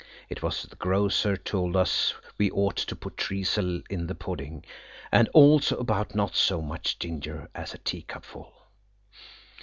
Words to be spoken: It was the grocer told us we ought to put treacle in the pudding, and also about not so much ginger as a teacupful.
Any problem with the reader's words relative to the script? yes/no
no